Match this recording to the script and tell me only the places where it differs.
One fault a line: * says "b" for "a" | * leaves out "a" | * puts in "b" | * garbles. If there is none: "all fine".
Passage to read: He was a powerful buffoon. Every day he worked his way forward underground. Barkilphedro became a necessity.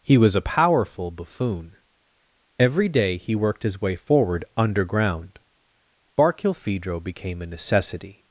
all fine